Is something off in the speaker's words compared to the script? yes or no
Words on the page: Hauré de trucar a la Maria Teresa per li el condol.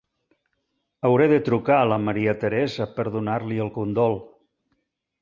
yes